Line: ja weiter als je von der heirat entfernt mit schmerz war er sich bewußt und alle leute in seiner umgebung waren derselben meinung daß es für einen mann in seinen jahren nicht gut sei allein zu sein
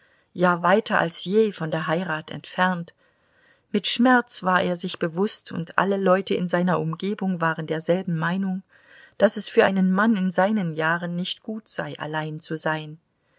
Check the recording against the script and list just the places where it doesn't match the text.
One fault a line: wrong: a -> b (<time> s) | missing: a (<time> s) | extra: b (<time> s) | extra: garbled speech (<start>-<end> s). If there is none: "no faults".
no faults